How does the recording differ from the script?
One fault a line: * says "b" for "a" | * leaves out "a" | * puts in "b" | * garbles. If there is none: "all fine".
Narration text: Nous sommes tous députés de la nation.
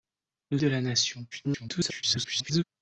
* leaves out "sommes tous députés"
* garbles